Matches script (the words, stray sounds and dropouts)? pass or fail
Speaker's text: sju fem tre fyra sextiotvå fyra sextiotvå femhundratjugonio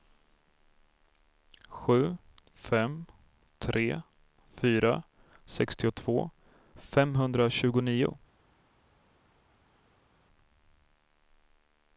fail